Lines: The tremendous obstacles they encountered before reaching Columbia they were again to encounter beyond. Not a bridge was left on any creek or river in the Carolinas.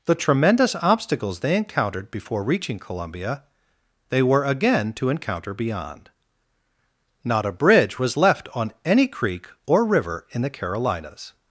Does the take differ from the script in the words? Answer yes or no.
no